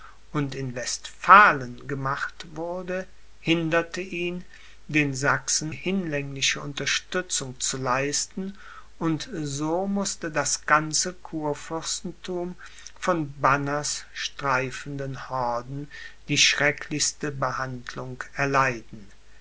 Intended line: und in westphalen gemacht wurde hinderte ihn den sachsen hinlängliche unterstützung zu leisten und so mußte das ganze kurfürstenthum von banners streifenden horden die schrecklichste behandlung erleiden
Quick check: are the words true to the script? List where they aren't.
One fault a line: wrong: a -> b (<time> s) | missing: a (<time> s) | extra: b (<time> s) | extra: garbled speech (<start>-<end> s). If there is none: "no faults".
no faults